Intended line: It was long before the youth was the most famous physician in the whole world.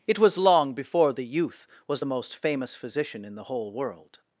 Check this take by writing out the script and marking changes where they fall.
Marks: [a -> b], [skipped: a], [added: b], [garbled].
It was long before the youth was the most famous physician in the whole world.